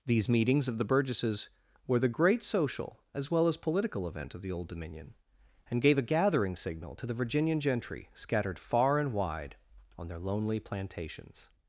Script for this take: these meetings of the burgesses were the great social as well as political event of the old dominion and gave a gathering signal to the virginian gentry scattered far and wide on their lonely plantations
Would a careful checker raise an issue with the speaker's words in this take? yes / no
no